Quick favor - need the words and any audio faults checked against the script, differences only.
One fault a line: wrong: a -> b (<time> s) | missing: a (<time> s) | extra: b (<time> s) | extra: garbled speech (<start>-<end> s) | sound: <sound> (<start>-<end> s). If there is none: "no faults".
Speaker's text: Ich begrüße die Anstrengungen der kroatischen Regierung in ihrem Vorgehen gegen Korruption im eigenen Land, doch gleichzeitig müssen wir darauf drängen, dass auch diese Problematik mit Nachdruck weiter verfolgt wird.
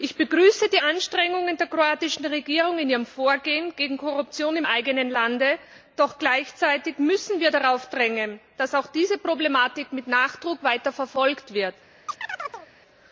sound: chirp (12.1-12.7 s)